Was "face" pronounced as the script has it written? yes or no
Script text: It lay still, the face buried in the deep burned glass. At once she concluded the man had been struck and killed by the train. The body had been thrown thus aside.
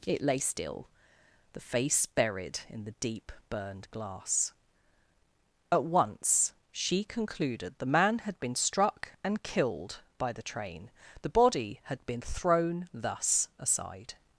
yes